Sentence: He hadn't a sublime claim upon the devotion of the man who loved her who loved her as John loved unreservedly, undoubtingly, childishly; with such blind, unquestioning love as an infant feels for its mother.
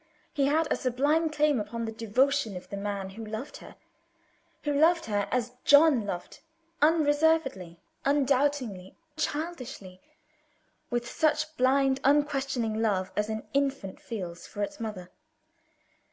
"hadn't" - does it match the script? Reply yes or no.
no